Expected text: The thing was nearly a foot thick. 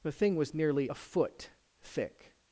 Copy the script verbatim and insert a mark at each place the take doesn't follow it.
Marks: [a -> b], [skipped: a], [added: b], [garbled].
The thing was nearly a foot thick.